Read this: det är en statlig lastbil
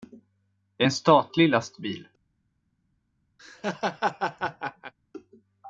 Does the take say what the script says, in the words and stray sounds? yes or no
no